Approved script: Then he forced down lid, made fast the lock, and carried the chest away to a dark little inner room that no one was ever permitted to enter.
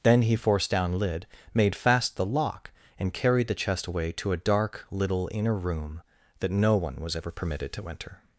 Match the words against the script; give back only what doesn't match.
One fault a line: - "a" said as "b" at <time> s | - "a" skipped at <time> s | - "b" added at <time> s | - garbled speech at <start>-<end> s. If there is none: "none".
none